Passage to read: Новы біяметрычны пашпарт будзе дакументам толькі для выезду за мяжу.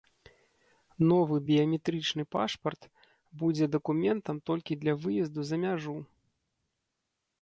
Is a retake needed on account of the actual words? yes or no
no